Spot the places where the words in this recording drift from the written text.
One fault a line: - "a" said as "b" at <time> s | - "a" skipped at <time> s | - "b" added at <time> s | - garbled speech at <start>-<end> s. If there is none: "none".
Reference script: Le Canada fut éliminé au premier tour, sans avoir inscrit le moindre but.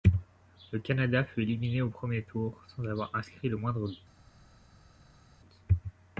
none